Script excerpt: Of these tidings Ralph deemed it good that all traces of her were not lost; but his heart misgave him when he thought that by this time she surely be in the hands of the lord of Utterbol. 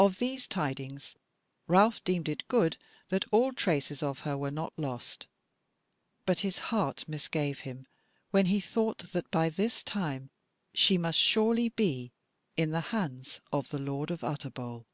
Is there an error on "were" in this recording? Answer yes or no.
no